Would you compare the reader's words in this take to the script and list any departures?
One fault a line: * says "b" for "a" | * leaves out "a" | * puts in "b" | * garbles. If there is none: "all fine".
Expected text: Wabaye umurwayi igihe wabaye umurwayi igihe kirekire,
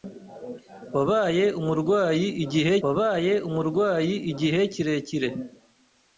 all fine